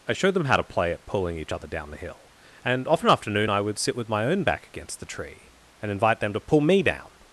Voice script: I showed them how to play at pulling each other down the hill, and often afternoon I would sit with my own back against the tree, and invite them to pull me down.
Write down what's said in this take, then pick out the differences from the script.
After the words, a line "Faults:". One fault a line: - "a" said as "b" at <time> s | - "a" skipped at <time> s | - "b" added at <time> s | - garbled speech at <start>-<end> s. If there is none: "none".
I showed them how to play at pulling each other down the hill, and often afternoon I would sit with my own back against the tree, and invite them to pull me down.
Faults:
none